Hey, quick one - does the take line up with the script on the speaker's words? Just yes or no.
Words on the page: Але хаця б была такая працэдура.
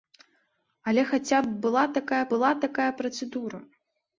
no